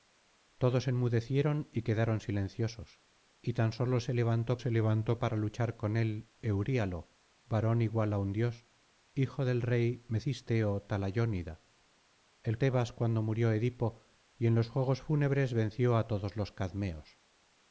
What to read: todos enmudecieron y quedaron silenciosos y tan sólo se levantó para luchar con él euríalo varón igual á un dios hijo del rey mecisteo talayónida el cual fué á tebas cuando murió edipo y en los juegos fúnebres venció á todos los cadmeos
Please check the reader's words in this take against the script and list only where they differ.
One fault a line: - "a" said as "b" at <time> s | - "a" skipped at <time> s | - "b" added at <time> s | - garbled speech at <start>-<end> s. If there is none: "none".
- "se levantó" added at 4.6 s
- "cual fué á" skipped at 12.6 s